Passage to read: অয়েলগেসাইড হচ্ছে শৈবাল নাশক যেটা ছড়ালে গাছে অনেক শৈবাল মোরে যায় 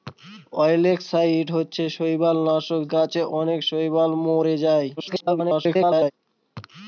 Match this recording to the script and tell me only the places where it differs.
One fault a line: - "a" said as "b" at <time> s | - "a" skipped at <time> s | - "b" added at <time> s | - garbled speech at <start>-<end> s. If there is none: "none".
- "যেটা ছড়ালে" skipped at 2.8 s
- garbled speech at 5.0-6.1 s